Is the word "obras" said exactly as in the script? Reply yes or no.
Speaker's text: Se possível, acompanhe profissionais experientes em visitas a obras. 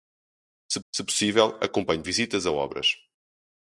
yes